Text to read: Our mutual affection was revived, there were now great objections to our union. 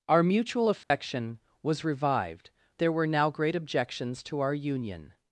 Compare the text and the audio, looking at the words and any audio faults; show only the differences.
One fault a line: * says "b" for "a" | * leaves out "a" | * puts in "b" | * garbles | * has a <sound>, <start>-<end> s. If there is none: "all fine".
* has a dropout, 0.8-0.9 s